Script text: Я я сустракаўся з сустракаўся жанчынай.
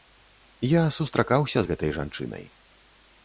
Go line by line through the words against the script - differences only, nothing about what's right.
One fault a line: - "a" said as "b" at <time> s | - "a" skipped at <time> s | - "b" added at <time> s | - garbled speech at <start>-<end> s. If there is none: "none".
- "я" skipped at 0.8 s
- "сустракаўся" said as "гэтай" at 1.7 s